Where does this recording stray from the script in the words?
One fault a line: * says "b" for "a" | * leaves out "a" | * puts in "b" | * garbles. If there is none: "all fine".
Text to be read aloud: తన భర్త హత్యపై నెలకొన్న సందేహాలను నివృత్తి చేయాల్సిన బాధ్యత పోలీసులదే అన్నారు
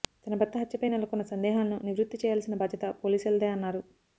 all fine